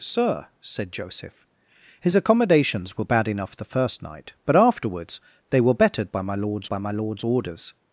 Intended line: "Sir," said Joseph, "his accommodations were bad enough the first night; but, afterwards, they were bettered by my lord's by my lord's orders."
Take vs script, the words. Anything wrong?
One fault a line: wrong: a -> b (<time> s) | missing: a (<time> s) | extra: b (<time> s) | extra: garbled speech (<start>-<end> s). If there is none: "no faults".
no faults